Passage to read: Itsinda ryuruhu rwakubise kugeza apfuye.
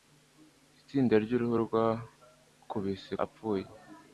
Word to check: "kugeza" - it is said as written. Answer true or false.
false